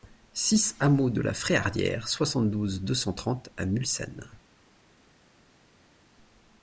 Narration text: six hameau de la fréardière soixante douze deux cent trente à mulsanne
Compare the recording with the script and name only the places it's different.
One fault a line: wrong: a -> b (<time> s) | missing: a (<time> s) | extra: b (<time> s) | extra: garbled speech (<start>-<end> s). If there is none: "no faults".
no faults